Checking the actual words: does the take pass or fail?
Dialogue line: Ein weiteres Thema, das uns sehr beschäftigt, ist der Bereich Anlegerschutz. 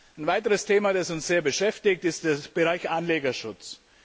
pass